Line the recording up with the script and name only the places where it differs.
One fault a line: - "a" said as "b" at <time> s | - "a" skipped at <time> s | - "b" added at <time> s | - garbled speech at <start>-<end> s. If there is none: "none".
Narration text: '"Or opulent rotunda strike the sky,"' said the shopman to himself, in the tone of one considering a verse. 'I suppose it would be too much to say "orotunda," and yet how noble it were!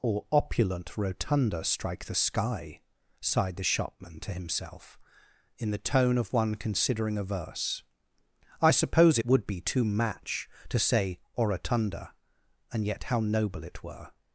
- "said" said as "sighed" at 3.2 s
- "much" said as "match" at 9.8 s